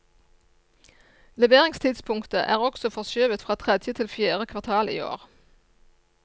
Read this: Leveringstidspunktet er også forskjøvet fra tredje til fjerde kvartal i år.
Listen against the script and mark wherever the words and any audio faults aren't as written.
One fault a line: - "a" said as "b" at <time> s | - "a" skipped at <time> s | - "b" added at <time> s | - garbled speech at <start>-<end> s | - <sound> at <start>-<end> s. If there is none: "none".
none